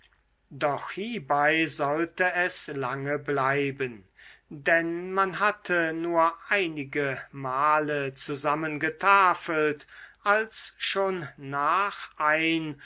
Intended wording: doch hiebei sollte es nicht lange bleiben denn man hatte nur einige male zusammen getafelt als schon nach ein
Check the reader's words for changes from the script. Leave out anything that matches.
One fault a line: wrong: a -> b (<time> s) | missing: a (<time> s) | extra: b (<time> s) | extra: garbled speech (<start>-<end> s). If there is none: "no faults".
missing: nicht (2.7 s)